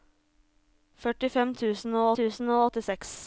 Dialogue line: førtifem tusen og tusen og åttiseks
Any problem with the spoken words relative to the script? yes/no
no